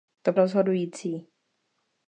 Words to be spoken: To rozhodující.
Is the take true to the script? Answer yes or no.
yes